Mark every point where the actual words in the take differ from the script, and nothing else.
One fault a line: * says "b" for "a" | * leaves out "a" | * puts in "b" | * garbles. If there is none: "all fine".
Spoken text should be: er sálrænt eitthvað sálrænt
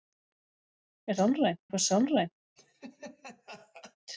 all fine